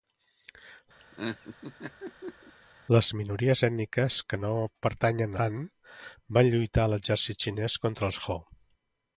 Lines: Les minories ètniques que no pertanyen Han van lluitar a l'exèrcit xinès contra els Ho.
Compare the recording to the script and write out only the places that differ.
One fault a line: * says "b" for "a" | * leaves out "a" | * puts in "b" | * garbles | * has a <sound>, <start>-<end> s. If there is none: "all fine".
* has a laugh, 1.0-2.5 s